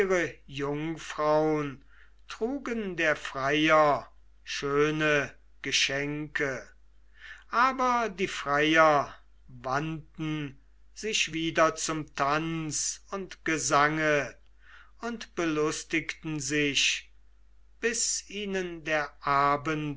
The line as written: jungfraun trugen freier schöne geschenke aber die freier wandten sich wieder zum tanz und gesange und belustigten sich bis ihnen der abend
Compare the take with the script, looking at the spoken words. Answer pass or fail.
fail